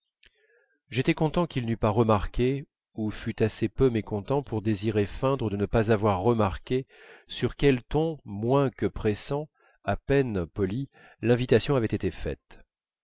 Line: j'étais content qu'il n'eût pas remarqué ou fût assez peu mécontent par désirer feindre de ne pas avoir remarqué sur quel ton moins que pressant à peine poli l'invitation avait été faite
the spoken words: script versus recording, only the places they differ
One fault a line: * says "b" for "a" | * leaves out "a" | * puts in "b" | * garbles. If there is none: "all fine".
* says "pour" for "par"